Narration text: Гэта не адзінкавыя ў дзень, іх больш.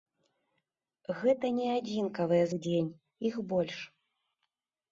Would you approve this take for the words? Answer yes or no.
yes